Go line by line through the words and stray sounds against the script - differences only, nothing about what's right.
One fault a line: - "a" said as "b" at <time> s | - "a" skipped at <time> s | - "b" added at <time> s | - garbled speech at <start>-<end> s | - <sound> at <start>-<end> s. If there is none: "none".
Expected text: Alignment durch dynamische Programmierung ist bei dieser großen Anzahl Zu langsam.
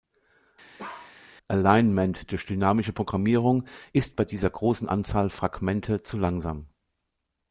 - bark at 0.8-1.2 s
- "Fragmente" added at 5.3 s